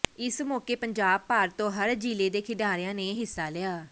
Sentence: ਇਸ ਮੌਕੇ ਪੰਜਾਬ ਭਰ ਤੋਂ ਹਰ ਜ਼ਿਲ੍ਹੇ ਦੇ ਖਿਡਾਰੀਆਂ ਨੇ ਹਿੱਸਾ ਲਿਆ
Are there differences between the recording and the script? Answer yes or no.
no